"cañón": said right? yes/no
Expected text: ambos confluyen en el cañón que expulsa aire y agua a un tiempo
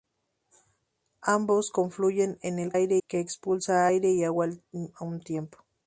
no